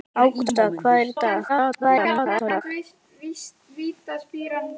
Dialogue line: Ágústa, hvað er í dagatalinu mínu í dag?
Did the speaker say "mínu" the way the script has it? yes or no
no